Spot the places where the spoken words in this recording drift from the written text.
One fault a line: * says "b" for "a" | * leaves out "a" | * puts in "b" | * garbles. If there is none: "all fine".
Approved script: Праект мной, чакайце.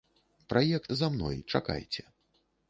* puts in "за"